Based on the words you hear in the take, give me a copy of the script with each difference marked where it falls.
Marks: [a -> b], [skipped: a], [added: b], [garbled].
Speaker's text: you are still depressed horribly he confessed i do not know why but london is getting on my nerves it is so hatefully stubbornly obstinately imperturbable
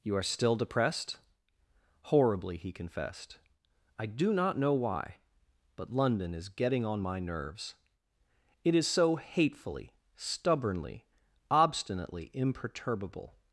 you are still depressed horribly he confessed i do not know why but london is getting on my nerves it is so hatefully stubbornly obstinately imperturbable